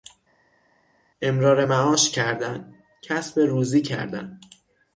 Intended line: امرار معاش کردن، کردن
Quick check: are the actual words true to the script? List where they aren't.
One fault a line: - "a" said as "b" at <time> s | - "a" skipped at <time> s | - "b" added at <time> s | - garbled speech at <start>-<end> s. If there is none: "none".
- "کسب روزی" added at 3.0 s